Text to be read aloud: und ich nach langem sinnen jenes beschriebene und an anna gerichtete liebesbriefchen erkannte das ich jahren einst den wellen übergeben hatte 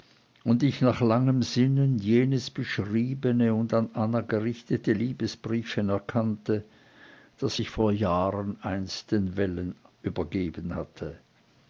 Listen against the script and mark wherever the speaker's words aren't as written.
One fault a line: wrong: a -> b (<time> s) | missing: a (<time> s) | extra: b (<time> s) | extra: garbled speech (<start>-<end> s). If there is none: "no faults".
extra: vor (7.7 s)